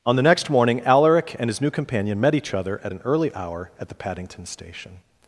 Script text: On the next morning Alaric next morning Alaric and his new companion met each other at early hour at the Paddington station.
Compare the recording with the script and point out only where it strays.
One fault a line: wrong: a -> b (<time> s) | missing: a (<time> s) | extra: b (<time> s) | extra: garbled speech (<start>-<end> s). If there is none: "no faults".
missing: next morning Alaric (1.4 s)
extra: an (2.9 s)